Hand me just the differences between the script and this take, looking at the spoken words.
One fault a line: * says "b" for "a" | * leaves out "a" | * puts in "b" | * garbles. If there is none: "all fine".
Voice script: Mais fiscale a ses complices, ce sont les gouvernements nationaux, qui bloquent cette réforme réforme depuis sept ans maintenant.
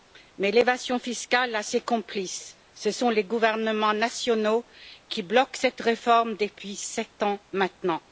* puts in "l'évasion"
* leaves out "réforme"